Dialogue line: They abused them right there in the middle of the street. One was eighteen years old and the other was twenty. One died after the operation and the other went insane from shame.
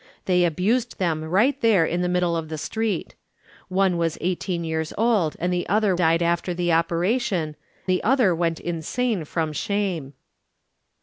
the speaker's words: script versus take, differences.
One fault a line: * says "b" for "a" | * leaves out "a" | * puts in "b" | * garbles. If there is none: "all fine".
* leaves out "was twenty One"
* leaves out "and"